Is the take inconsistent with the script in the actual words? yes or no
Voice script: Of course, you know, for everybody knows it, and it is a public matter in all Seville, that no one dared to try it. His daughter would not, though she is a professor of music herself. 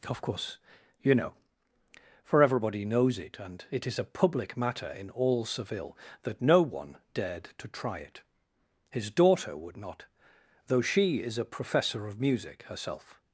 no